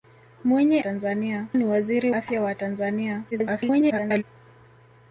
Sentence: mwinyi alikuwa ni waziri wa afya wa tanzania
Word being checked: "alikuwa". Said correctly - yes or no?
no